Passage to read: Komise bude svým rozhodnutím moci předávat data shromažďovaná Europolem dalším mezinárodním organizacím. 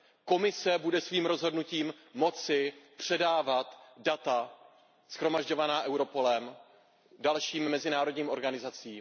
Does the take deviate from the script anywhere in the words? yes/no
no